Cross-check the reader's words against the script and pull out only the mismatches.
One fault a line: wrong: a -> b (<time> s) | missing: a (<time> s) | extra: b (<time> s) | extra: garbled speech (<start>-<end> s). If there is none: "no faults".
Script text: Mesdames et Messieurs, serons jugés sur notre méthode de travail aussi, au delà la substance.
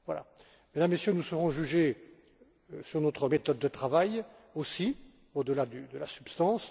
extra: nous (1.1 s)
extra: de (5.6 s)